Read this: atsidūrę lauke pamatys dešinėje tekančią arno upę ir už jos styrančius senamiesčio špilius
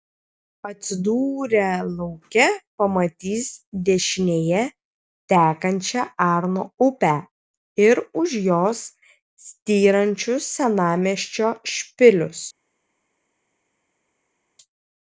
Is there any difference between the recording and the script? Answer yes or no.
no